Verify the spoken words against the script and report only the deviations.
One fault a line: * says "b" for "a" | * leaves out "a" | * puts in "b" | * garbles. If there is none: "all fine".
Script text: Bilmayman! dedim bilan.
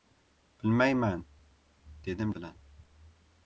all fine